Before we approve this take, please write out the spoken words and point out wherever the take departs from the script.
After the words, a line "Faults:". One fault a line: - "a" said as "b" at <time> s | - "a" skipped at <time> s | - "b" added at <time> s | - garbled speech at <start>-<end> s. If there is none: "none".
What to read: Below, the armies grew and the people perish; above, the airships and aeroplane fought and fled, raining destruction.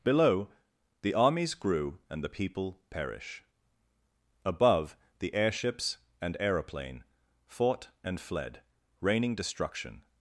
Below, the armies grew and the people perish; above, the airships and aeroplane fought and fled, raining destruction.
Faults:
none